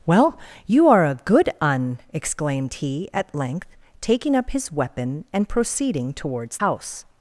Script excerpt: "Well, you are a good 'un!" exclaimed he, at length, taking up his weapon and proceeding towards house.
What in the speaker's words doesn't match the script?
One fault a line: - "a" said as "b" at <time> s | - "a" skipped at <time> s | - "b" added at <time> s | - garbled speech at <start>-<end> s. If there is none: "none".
none